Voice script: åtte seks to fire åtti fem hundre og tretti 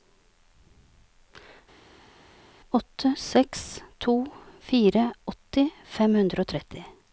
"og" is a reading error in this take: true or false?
false